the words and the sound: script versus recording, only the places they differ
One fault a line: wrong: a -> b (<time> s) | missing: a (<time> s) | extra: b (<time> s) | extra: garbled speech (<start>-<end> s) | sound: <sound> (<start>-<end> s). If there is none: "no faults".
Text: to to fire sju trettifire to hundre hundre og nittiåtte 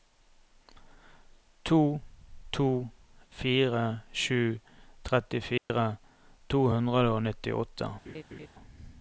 sound: dropout (5.6-5.7 s)
missing: hundre (7.1 s)
sound: laugh (8.0-8.5 s)